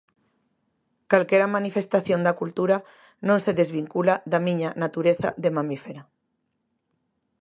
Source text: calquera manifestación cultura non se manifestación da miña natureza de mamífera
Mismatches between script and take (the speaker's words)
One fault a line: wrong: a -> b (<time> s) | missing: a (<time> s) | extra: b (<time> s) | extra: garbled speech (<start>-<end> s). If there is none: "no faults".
extra: da (2.2 s)
wrong: manifestación -> desvincula (3.6 s)